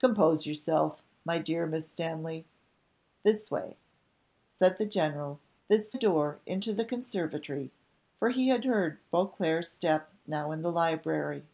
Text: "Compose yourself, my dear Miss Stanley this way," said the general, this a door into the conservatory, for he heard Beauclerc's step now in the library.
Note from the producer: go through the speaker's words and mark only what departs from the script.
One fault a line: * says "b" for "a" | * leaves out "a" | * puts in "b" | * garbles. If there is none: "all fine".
all fine